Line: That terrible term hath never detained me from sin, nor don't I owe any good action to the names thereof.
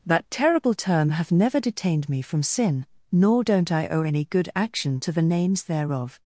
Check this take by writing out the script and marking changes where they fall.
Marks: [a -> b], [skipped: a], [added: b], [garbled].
That terrible term hath never detained me from sin, nor don't I owe any good action to the names thereof.